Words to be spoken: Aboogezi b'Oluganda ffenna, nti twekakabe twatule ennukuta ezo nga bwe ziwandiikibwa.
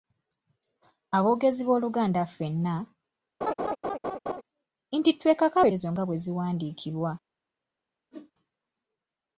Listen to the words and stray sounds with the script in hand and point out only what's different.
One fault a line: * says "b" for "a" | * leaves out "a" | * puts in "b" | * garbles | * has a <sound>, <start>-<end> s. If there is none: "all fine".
* has a laugh, 3.4-4.4 s
* leaves out "twatule ennukuta"
* has a whoosh, 8.1-8.3 s